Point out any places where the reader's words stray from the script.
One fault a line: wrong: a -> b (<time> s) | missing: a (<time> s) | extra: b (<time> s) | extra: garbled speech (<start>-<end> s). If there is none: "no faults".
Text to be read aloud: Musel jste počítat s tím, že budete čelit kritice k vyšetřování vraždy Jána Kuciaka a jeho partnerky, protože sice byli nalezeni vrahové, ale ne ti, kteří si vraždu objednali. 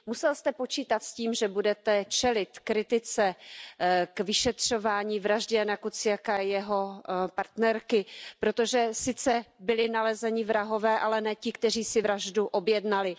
no faults